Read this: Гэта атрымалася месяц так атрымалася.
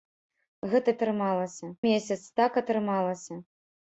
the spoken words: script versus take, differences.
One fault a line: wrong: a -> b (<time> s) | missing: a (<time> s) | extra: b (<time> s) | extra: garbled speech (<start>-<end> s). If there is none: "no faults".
no faults